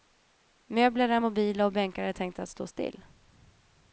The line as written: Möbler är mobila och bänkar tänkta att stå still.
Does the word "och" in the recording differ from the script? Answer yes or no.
no